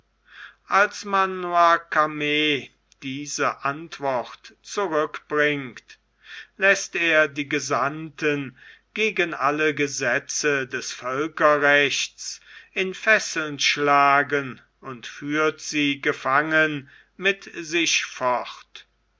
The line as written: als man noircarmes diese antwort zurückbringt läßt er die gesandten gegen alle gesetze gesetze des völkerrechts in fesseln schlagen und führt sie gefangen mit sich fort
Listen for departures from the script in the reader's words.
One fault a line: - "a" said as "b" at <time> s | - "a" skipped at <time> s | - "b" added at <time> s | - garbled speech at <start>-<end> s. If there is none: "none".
- "gesetze" skipped at 10.7 s